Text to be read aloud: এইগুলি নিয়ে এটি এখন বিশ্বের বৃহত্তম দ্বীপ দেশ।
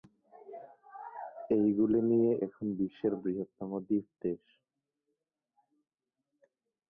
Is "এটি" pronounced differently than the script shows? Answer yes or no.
yes